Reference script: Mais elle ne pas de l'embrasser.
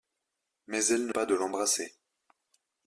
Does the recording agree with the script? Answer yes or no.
yes